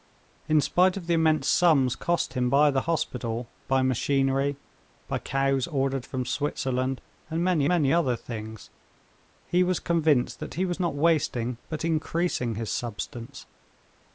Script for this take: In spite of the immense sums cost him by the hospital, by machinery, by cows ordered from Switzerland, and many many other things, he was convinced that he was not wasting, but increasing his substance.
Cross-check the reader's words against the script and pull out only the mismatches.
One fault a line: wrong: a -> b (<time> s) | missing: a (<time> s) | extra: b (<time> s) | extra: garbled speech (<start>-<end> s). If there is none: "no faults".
no faults